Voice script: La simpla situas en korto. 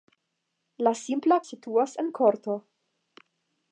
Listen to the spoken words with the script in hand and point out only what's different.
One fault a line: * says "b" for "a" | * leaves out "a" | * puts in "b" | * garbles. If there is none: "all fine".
all fine